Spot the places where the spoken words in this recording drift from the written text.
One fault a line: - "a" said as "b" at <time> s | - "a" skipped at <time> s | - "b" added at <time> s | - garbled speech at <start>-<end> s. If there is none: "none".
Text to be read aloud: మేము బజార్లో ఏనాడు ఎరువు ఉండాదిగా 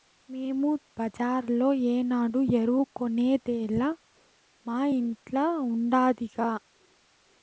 - "కొనేదేలా మా ఇంట్ల" added at 2.9 s